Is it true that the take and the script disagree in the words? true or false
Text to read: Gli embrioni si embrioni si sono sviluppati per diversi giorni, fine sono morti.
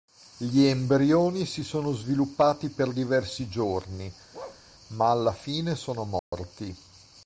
true